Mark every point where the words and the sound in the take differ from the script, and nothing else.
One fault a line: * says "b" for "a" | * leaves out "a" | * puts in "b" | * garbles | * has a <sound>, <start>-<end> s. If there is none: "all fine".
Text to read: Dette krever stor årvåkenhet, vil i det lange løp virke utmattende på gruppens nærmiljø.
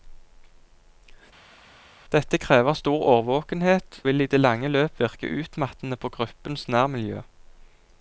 all fine